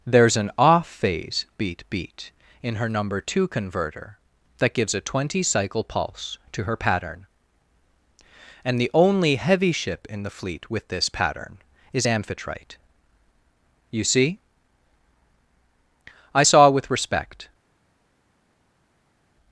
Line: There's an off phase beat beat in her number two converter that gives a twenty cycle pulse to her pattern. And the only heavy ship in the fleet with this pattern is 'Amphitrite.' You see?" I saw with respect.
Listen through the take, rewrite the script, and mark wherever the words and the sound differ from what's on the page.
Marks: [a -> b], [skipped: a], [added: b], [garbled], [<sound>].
There's an off phase beat beat in her number two converter that gives a twenty cycle pulse to her pattern. And the only heavy ship in the fleet with this pattern is 'Amphitrite.' You see?" I saw with respect.